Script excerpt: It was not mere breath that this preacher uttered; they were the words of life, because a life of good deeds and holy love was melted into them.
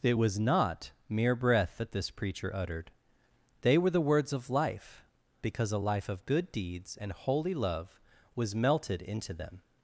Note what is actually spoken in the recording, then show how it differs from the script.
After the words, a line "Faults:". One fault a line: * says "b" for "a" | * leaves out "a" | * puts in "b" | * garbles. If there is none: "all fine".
It was not mere breath that this preacher uttered; they were the words of life, because a life of good deeds and holy love was melted into them.
Faults:
all fine